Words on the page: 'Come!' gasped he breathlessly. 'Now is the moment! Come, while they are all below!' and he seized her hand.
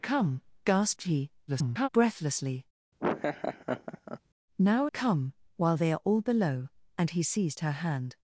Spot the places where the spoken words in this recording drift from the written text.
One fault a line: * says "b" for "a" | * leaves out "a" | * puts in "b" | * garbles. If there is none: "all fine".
* garbles
* leaves out "is the moment"